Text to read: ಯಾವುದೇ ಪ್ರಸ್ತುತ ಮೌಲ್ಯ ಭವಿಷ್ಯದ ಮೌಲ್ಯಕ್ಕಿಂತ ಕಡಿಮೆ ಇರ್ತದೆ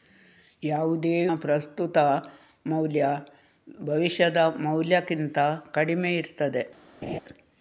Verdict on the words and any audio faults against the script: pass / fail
fail